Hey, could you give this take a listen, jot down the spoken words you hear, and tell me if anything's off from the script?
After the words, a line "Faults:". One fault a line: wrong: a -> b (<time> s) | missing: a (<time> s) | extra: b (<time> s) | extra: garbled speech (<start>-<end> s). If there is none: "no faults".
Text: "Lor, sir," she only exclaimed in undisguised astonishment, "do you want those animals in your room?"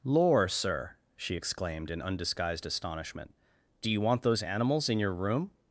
"Lor, sir," she exclaimed in undisguised astonishment, "do you want those animals in your room?"
Faults:
missing: only (1.4 s)